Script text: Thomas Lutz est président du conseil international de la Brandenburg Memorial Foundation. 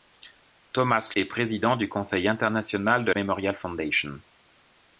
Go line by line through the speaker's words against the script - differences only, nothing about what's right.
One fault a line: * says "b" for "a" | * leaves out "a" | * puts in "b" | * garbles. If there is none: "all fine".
* leaves out "Lutz"
* leaves out "la Brandenburg"